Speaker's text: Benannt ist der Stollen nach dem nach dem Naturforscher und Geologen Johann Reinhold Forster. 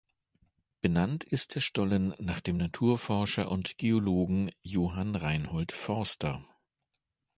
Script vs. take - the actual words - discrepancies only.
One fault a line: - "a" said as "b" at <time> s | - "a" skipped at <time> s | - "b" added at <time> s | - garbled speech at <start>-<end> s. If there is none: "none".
- "nach dem" skipped at 2.6 s